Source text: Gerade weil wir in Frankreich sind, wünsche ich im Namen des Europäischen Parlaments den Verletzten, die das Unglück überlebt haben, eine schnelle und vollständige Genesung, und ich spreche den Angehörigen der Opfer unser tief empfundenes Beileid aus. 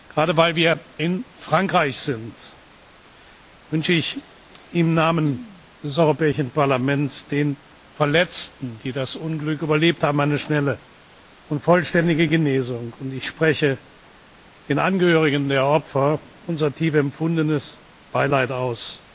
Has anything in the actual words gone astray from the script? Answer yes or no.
no